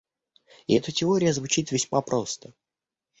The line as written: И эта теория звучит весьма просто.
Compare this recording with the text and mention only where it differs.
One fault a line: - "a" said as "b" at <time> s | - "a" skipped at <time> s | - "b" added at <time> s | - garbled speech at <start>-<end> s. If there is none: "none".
none